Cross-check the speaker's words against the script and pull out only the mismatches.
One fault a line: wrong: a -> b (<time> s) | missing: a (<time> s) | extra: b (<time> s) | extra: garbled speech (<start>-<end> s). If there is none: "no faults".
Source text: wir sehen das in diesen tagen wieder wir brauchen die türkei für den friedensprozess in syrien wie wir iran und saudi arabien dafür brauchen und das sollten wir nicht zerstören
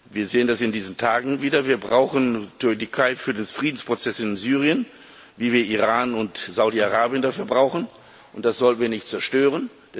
no faults